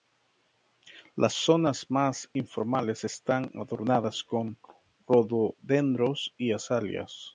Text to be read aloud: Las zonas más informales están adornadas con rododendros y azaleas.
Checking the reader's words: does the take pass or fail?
pass